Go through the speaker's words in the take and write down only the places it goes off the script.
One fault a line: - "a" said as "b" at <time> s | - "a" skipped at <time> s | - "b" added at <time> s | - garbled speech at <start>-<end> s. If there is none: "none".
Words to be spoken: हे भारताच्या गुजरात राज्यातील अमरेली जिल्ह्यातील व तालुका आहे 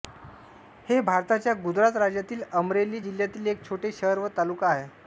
- "एक छोटे शहर" added at 3.5 s